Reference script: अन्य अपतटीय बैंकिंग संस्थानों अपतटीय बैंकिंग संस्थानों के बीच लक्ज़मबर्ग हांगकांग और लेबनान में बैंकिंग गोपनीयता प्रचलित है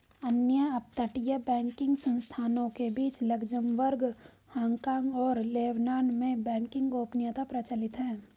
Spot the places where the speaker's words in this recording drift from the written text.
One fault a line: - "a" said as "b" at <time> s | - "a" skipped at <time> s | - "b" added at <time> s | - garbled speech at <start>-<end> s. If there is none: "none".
- "अपतटीय बैंकिंग संस्थानों" skipped at 2.7 s